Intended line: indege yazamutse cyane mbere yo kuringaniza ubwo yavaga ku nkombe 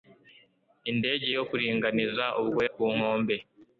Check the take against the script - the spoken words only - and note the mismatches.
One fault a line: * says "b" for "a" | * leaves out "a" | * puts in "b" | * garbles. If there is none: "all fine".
* leaves out "yazamutse cyane mbere"
* leaves out "yavaga"